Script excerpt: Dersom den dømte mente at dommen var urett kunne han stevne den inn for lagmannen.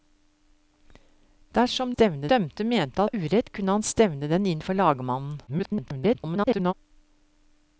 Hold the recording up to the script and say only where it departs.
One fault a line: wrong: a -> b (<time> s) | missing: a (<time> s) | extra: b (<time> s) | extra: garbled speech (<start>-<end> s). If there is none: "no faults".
wrong: den -> stevne (1.9 s)
missing: at dommen (3.0 s)
extra: garbled speech (5.5-6.7 s)